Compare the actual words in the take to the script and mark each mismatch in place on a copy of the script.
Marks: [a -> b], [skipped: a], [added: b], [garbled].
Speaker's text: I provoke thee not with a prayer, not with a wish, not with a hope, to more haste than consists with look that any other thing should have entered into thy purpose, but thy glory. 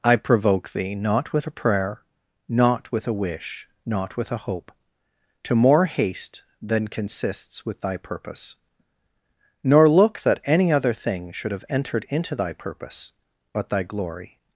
I provoke thee not with a prayer, not with a wish, not with a hope, to more haste than consists with [added: thy purpose nor] look that any other thing should have entered into thy purpose, but thy glory.